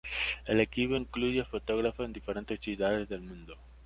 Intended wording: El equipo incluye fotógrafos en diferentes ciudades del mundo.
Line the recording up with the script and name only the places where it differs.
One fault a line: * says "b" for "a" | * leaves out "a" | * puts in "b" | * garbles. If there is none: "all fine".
all fine